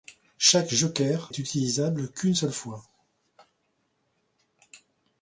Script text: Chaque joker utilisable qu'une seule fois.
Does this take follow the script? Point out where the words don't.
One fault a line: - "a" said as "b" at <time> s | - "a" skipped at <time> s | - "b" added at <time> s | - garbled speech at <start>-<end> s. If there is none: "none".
none